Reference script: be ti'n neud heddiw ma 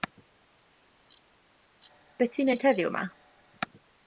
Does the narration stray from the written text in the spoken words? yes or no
no